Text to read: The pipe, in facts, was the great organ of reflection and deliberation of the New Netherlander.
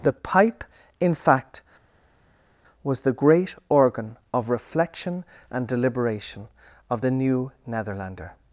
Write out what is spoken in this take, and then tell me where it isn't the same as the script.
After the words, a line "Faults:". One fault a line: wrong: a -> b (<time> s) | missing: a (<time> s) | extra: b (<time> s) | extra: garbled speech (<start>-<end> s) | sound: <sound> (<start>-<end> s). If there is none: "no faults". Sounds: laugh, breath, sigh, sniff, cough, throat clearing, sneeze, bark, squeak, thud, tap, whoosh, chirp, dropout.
The pipe, in fact, was the great organ of reflection and deliberation of the New Netherlander.
Faults:
wrong: facts -> fact (1.1 s)